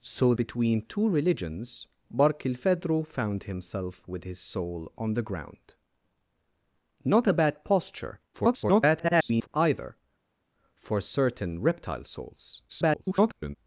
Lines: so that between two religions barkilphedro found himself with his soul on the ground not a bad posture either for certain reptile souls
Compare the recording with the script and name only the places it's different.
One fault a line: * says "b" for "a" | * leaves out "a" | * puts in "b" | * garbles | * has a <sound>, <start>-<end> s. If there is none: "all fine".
* leaves out "that"
* garbles
* garbles